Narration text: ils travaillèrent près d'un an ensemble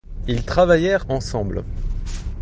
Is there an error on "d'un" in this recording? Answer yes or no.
yes